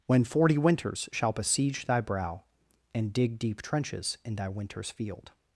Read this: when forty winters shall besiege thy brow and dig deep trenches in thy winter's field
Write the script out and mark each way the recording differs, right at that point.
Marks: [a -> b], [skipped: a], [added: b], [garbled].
when forty winters shall besiege thy brow and dig deep trenches in thy winter's field